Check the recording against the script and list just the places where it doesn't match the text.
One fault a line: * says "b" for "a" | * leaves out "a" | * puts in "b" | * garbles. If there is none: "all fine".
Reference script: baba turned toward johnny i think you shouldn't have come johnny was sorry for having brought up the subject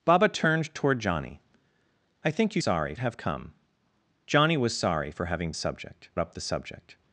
* says "sorry" for "shouldn't"
* says "subject" for "brought"